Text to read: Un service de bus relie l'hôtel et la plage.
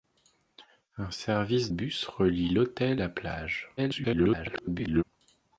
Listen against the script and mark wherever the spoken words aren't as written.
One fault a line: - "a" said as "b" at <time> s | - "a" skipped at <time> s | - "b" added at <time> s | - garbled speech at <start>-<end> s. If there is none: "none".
- "de" skipped at 1.7 s
- "et" skipped at 3.0 s
- garbled speech at 3.8-5.0 s